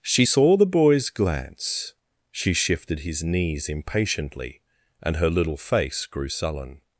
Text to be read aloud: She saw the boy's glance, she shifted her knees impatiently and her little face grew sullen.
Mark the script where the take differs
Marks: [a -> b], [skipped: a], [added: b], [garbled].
She saw the boy's glance, she shifted [her -> his] knees impatiently and her little face grew sullen.